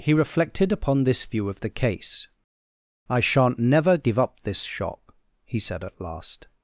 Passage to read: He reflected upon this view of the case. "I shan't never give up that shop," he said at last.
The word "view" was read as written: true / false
true